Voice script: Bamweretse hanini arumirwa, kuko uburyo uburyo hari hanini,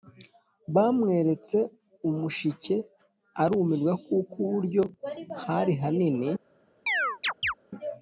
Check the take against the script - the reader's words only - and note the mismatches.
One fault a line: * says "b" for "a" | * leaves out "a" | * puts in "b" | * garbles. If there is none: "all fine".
* says "umushike" for "hanini"
* leaves out "uburyo"